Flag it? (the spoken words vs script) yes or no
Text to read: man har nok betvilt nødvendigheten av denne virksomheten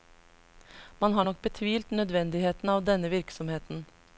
no